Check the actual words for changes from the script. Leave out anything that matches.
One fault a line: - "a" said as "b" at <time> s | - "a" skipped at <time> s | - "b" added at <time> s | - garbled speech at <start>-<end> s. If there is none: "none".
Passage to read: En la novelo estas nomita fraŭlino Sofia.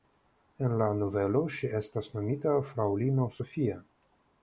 - "ŝi" added at 1.6 s